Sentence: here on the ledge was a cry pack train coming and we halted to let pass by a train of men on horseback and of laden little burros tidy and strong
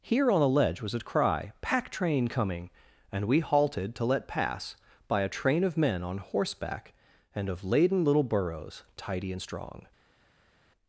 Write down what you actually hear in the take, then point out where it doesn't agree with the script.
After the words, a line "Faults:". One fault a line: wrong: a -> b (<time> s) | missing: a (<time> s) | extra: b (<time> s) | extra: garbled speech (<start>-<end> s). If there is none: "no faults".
here on the ledge was a cry pack train coming and we halted to let pass by a train of men on horseback and of laden little burros tidy and strong
Faults:
no faults